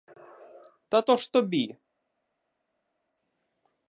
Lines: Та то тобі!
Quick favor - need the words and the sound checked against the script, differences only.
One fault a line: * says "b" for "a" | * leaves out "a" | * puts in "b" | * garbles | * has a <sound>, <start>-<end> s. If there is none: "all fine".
* puts in "ж"